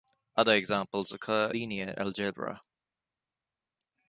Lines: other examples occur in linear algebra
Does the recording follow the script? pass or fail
fail